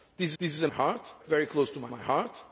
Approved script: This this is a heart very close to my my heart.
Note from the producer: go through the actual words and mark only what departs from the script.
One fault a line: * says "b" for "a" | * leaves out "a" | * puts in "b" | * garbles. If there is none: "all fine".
all fine